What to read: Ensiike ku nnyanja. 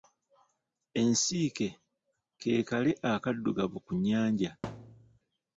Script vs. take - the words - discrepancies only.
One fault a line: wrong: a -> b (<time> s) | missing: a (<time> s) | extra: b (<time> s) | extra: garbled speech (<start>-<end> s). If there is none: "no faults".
extra: ke kale akaddugavu (2.4 s)